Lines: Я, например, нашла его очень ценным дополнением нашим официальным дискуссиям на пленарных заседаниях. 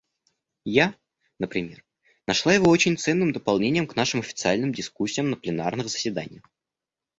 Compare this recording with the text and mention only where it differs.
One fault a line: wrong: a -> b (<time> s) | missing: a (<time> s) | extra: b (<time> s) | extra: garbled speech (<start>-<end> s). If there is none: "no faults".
extra: к (3.9 s)